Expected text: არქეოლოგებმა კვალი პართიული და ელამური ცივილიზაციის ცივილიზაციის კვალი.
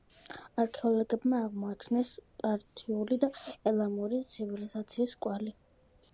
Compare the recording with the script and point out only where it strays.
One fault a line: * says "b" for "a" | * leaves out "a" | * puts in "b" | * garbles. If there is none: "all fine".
* says "აღმოაჩინეს" for "კვალი"
* leaves out "ცივილიზაციის"